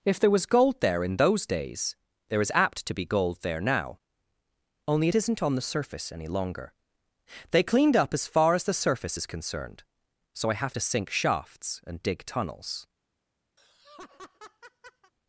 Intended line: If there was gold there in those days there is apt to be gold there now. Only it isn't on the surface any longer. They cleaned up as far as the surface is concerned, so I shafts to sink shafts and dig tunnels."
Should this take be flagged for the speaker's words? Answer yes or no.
yes